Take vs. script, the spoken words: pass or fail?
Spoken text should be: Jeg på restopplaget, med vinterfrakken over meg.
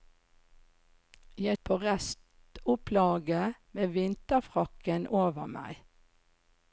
pass